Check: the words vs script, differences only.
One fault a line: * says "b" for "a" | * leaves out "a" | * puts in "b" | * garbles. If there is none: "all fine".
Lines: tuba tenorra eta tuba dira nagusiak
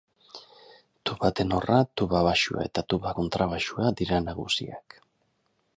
* puts in "tuba baxua"
* puts in "kontrabaxua"